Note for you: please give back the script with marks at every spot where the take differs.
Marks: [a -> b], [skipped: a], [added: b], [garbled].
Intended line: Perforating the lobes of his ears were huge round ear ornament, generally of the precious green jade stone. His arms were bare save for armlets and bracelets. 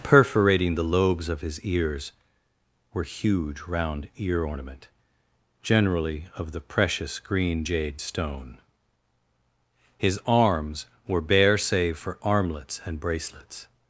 Perforating the lobes of his ears were huge round ear ornament, generally of the precious green jade stone. His arms were bare save for armlets and bracelets.